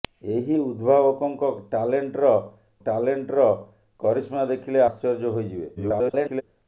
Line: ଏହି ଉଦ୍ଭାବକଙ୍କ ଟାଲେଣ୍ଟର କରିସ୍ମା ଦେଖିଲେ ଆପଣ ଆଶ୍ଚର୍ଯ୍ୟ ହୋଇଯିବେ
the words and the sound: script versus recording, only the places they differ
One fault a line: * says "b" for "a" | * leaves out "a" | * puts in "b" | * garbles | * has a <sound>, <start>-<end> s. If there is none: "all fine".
* puts in "ଟାଲେଣ୍ଟର"
* leaves out "ଆପଣ"
* garbles